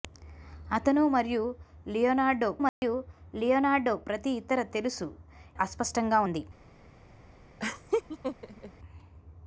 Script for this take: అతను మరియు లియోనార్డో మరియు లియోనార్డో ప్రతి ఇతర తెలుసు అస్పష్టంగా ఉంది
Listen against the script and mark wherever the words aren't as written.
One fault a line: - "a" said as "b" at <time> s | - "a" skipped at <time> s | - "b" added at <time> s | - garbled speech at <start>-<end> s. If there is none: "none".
none